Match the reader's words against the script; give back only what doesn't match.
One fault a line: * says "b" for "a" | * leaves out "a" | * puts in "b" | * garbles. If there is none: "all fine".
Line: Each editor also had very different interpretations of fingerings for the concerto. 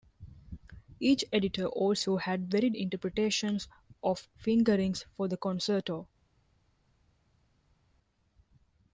* leaves out "different"